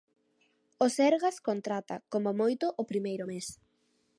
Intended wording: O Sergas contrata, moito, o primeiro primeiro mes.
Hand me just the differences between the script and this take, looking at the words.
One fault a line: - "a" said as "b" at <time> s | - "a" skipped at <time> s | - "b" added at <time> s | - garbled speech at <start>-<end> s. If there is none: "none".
- "como" added at 2.1 s
- "primeiro" skipped at 3.3 s